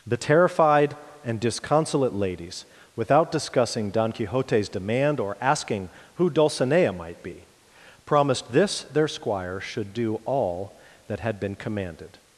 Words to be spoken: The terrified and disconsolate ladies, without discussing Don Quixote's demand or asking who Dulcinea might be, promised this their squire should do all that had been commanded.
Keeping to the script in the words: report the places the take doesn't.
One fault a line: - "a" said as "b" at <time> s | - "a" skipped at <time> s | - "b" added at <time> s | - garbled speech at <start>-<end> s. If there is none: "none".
none